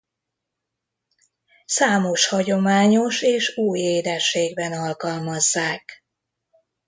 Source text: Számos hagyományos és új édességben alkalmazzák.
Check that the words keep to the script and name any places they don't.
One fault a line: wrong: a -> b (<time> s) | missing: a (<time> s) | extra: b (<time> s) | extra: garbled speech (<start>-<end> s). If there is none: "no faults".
no faults